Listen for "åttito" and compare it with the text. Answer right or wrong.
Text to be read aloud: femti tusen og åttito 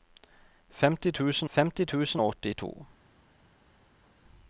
right